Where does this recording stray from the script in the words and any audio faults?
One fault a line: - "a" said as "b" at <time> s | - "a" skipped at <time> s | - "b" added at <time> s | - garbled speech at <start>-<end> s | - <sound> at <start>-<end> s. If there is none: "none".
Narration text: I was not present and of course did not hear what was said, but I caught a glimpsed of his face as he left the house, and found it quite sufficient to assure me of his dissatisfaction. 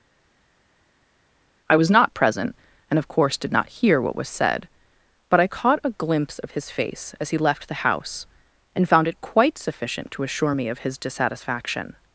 - "glimpsed" said as "glimpse" at 5.9 s